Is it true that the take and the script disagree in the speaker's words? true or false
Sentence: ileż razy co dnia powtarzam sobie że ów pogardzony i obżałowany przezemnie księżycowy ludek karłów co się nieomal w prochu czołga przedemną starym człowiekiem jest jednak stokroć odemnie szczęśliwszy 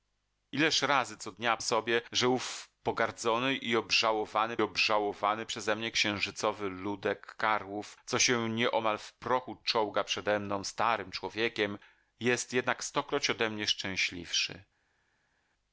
true